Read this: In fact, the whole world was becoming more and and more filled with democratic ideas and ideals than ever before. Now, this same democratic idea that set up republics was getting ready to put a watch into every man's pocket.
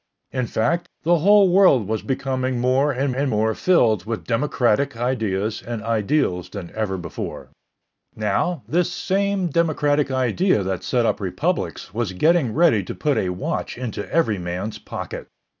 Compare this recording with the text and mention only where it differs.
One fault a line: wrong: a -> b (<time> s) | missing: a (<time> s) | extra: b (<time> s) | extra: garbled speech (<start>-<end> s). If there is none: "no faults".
no faults